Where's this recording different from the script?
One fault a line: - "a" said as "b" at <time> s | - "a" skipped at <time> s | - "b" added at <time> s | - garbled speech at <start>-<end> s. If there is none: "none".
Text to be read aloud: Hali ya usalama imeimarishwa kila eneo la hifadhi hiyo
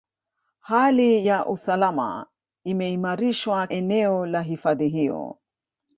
- "kila" skipped at 3.7 s